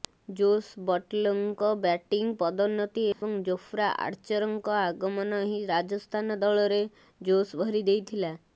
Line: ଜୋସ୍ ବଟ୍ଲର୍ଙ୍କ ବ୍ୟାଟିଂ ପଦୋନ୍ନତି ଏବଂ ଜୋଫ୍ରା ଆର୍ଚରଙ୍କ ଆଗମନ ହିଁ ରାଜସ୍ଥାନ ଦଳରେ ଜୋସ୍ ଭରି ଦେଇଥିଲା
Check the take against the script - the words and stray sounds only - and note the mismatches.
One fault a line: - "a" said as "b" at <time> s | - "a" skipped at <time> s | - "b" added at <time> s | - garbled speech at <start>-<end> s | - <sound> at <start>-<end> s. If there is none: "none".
- dropout at 3.1-3.2 s